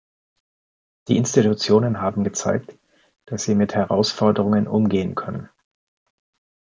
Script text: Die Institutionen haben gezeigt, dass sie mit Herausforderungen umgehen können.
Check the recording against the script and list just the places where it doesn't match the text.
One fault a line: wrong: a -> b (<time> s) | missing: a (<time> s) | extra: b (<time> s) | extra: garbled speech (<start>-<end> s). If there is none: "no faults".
no faults